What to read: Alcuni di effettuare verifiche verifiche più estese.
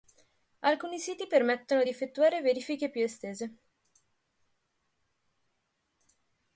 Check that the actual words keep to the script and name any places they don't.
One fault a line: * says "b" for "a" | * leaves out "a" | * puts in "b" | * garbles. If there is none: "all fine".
* puts in "siti permettono"
* leaves out "verifiche"